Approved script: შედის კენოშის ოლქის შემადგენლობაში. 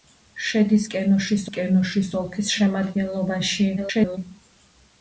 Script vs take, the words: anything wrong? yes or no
yes